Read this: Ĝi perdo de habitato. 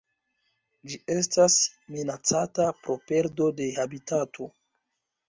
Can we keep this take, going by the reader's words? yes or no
no